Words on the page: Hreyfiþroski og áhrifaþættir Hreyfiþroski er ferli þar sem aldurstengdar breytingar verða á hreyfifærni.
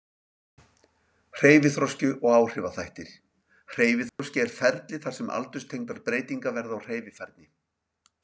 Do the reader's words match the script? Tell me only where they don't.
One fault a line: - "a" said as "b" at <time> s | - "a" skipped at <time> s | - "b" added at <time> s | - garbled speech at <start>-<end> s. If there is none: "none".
none